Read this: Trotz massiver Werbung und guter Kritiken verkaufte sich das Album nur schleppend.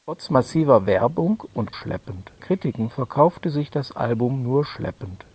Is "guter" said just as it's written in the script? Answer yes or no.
no